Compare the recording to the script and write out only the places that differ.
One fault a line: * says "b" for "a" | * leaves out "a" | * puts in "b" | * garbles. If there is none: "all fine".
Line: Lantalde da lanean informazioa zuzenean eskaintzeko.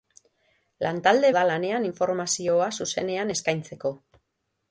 all fine